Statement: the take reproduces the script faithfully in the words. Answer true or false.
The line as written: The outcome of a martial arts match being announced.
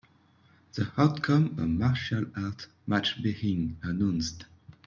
false